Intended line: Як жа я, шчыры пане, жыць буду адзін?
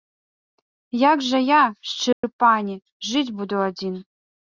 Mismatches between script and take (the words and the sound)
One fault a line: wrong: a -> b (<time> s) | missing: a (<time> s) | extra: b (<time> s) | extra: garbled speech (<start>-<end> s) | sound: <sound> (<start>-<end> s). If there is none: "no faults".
sound: dropout (2.1-2.2 s)